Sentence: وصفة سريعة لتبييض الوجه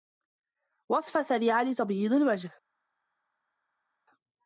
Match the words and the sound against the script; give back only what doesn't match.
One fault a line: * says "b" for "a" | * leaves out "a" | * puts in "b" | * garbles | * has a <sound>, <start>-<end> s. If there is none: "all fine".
all fine